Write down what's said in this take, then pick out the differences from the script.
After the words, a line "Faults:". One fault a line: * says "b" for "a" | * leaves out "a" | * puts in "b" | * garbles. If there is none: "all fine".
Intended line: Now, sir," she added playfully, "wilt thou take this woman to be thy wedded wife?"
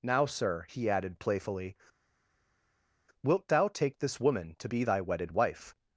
Now, sir," he added playfully, "wilt thou take this woman to be thy wedded wife?"
Faults:
* says "he" for "she"